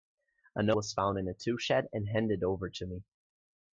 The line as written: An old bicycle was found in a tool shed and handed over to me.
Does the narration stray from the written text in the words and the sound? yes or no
yes